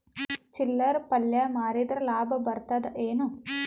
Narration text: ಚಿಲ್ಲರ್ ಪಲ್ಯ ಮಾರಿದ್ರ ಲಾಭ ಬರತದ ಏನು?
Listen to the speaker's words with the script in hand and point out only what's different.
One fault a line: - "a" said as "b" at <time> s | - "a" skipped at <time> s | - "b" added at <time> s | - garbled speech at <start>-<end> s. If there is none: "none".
none